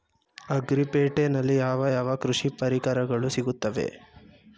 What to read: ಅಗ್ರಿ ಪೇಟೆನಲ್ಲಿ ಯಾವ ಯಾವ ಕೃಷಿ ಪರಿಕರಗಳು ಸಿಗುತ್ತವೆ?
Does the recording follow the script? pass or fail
pass